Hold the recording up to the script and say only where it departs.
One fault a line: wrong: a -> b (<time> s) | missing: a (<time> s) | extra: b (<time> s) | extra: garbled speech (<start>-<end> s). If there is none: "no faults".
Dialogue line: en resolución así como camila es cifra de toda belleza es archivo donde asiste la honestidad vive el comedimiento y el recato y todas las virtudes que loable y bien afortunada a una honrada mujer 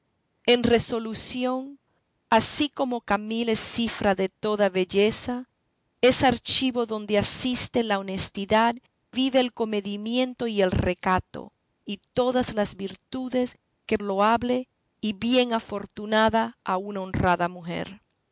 no faults